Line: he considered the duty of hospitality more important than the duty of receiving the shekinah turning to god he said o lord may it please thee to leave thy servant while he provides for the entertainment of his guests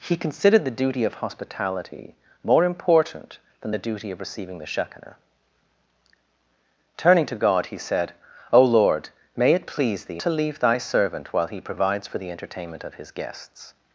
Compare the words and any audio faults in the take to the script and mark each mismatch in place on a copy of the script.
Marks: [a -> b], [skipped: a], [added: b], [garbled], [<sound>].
he considered the duty of hospitality more important than the duty of receiving the shekinah turning to god he said o lord may it please thee to leave thy servant while he provides for the entertainment of his guests